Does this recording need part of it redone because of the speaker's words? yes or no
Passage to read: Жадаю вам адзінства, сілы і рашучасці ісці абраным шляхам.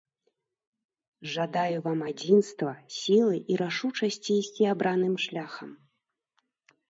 no